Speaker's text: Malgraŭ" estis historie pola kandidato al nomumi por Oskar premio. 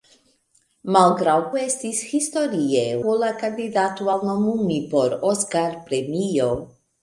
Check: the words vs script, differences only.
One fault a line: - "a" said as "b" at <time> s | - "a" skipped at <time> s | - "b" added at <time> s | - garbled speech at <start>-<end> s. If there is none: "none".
none